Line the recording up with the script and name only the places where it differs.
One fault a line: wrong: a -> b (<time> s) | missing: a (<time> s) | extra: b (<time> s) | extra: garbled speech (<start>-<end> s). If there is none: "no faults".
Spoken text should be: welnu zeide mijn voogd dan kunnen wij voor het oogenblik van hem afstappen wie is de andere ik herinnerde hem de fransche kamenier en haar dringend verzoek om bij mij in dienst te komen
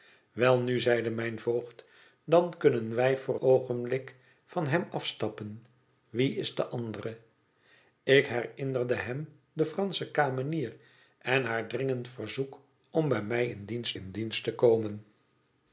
missing: het (3.4 s)
extra: in dienst (13.9 s)